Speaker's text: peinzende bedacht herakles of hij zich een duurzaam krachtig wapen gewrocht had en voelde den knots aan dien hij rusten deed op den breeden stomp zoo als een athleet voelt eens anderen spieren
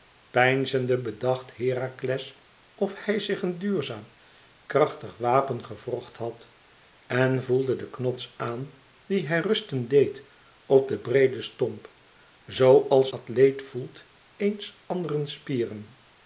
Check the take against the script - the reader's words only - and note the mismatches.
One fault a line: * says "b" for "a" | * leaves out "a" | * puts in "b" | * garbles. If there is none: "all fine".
* leaves out "een"